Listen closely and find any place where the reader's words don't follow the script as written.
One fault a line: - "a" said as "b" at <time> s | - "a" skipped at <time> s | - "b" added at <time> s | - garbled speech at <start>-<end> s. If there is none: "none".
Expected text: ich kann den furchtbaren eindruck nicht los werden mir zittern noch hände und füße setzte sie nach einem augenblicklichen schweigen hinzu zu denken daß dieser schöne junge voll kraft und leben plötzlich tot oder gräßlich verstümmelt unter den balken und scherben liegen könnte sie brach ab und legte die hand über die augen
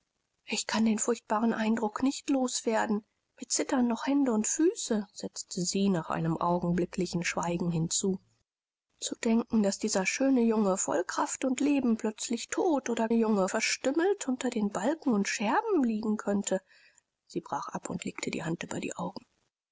- "gräßlich" said as "junge" at 13.1 s